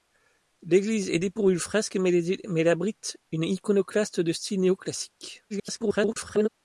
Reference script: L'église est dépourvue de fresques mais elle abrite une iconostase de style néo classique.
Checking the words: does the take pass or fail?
fail